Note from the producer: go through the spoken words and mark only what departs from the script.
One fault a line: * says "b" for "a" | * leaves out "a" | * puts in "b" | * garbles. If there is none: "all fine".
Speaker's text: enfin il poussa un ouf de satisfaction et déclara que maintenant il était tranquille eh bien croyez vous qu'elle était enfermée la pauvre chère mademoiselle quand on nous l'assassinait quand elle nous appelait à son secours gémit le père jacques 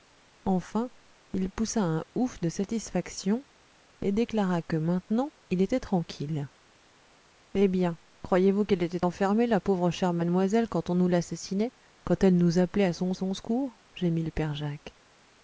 * puts in "son"